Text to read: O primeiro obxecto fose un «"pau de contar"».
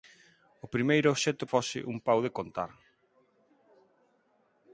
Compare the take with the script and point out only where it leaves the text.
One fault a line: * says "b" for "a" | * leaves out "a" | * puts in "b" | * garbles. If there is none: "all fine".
all fine